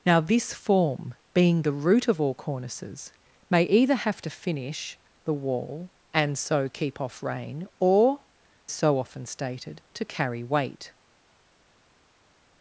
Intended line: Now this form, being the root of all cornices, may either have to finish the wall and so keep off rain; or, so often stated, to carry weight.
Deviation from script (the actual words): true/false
false